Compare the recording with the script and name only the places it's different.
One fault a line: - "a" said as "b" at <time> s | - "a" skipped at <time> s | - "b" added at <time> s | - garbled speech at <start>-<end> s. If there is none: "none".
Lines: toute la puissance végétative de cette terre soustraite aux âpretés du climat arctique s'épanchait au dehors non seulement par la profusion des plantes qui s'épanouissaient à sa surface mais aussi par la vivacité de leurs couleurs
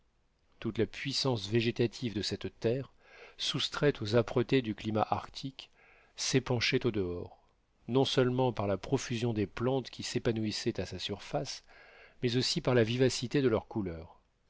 none